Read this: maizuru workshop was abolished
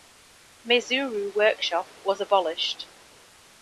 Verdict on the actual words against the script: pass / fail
pass